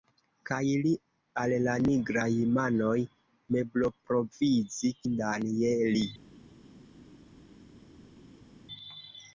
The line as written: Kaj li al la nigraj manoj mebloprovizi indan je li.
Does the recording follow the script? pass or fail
pass